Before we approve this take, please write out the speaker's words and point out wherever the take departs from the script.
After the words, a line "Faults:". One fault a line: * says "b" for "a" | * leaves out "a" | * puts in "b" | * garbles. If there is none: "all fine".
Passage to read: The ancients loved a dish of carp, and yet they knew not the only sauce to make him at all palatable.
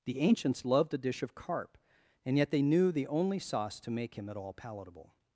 The ancients loved a dish of carp, and yet they knew the only sauce to make him at all palatable.
Faults:
* leaves out "not"